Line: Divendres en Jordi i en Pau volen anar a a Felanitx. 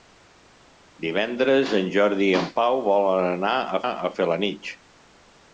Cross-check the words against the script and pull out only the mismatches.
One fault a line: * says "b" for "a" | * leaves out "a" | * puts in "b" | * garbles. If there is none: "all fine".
all fine